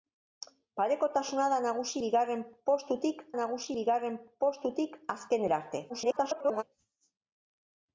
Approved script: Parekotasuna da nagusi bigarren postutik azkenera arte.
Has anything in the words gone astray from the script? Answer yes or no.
yes